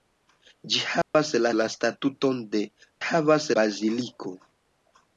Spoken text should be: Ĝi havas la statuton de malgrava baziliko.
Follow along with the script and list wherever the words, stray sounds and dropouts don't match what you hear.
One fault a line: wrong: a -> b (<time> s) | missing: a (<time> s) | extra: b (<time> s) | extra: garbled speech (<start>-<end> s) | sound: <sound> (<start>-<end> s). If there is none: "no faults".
sound: dropout (1.0-1.1 s)
extra: la (1.6 s)
wrong: malgrava -> havas (3.1 s)